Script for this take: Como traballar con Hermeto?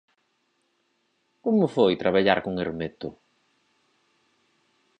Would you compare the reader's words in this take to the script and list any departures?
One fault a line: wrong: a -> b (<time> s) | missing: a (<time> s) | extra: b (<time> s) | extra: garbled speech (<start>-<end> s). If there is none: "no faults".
extra: foi (1.8 s)